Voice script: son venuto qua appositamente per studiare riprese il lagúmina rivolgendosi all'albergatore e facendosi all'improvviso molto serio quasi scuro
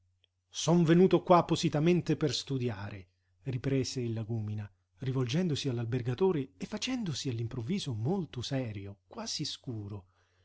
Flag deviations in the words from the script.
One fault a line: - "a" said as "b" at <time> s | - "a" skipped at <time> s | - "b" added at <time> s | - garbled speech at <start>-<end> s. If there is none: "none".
none